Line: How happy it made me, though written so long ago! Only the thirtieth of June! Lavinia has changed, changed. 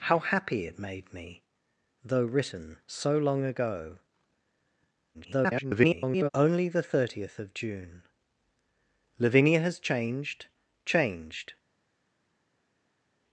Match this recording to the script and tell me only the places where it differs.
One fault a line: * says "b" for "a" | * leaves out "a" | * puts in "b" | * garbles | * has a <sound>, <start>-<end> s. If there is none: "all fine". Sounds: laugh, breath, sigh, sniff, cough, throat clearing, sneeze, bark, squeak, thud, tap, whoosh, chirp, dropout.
* garbles